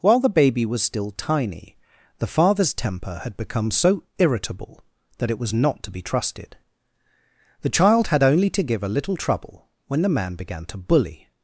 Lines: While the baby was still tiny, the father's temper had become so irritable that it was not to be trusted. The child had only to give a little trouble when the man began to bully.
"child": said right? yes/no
yes